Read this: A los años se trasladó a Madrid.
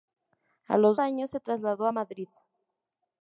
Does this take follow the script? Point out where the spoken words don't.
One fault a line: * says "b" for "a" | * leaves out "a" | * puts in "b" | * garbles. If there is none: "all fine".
all fine